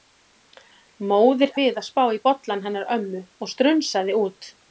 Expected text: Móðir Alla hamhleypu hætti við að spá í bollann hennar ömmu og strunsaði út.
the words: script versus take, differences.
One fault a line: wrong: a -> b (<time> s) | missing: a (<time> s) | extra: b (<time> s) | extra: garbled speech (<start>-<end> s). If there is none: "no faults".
missing: Alla hamhleypu hætti (1.5 s)